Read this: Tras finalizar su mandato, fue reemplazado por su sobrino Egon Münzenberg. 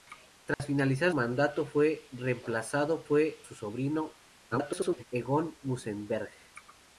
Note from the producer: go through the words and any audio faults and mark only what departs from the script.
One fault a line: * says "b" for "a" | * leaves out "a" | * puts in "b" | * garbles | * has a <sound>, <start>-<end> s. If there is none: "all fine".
* has a dropout, 0.5-0.6 s
* leaves out "su"
* says "fue" for "por"
* garbles